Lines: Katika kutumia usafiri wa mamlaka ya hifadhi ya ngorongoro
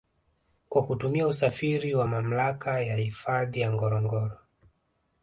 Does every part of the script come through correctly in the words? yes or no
no